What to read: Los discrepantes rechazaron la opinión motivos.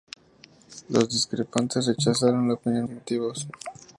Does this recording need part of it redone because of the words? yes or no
no